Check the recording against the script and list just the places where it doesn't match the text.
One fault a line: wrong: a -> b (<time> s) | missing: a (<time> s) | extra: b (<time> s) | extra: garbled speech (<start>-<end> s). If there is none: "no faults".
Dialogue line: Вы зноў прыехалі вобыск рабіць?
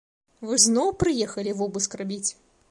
no faults